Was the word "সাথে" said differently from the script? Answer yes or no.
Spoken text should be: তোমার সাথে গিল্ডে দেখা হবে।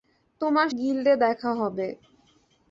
yes